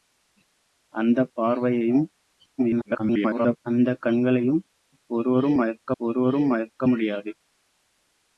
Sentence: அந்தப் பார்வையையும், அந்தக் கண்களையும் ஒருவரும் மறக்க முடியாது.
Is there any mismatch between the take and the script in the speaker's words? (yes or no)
yes